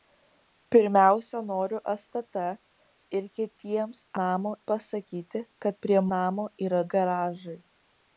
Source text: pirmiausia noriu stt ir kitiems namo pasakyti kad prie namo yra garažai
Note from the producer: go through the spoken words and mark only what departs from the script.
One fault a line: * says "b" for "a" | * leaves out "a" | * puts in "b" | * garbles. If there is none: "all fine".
all fine